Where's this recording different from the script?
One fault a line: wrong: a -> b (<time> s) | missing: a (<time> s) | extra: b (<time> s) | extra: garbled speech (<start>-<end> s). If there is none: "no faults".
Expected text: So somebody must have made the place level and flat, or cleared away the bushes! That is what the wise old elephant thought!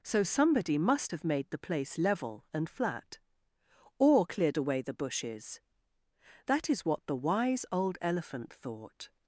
no faults